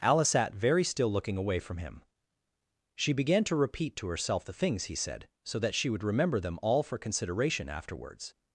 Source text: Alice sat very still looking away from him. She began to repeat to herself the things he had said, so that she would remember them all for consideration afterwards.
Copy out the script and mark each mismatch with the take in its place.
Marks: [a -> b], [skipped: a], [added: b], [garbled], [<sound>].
Alice sat very still looking away from him. She began to repeat to herself the things he [skipped: had] said, so that she would remember them all for consideration afterwards.